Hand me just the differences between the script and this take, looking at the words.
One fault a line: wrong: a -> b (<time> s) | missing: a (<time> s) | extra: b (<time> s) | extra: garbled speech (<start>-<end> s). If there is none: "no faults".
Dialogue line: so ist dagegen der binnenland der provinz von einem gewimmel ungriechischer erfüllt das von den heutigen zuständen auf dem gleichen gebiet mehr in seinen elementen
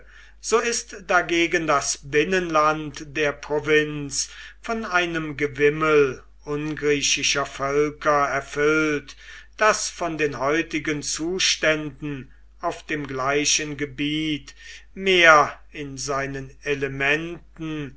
wrong: der -> das (1.7 s)
extra: völker (7.4 s)